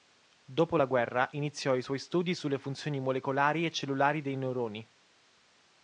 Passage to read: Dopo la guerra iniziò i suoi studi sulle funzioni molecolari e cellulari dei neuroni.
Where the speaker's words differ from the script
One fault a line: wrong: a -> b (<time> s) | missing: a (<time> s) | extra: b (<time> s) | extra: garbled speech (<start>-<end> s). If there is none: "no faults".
no faults